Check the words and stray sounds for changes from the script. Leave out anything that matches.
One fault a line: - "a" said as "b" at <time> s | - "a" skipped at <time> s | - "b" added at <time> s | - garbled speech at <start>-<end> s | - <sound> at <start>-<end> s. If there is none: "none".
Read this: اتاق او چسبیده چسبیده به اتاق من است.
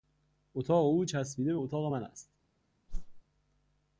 - "چسبیده" skipped at 1.5 s
- whoosh at 2.9-3.2 s